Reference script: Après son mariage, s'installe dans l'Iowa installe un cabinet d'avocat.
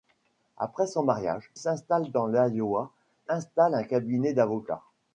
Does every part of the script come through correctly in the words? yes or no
yes